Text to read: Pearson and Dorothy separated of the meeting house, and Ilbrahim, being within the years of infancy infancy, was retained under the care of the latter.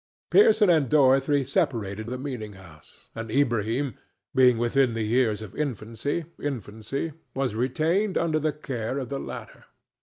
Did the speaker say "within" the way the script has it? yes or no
yes